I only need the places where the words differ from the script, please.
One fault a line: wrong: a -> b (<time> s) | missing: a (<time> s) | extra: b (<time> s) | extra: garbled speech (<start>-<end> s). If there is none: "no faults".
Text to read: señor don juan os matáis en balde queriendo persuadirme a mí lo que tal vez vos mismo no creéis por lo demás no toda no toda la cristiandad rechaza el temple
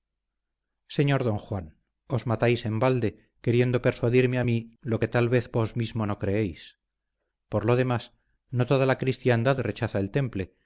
missing: no toda (8.8 s)